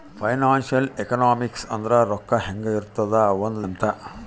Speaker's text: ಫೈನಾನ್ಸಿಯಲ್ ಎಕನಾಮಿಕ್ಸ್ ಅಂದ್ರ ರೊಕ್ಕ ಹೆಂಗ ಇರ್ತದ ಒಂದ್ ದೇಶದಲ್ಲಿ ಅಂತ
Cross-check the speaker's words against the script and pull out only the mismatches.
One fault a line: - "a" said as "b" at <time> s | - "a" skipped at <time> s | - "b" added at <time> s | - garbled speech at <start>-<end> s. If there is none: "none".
- "ದೇಶದಲ್ಲಿ" skipped at 3.6 s